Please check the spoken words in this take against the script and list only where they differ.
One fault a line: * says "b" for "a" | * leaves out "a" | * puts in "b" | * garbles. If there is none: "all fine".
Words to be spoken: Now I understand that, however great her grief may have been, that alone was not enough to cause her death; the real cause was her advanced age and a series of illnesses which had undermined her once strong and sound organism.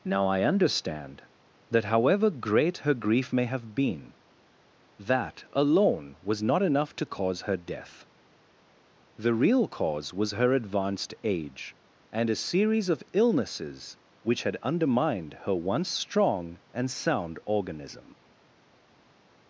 all fine